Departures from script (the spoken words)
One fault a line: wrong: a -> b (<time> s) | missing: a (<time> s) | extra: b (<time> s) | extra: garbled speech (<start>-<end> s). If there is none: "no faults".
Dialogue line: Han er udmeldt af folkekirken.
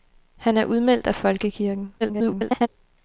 extra: garbled speech (2.0-2.7 s)